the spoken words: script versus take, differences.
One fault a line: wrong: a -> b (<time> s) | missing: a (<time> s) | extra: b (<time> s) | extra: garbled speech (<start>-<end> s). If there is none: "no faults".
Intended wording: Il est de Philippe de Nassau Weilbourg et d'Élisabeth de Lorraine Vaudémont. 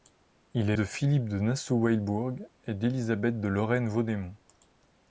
no faults